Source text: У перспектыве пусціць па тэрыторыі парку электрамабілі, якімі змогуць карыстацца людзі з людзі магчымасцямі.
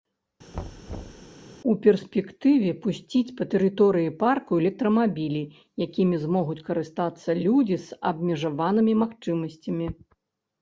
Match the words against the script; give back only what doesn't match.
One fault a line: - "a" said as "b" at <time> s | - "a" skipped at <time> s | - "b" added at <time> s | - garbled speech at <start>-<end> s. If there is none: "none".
- "людзі" said as "абмежаванымі" at 8.1 s